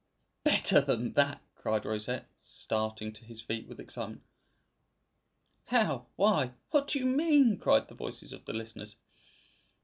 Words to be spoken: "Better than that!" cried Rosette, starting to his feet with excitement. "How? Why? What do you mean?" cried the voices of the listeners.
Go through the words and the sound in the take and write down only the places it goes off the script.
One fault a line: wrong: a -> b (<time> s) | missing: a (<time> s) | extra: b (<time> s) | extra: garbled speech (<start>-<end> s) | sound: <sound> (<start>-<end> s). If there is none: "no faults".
no faults